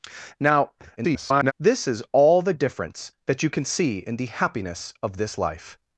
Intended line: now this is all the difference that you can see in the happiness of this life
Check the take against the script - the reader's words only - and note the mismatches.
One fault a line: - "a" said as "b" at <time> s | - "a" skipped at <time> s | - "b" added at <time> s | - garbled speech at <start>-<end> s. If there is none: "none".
- garbled speech at 1.0-1.5 s